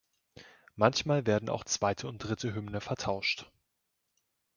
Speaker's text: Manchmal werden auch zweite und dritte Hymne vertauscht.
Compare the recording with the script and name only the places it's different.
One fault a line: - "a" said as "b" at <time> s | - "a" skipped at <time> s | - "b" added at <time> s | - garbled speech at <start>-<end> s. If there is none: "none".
none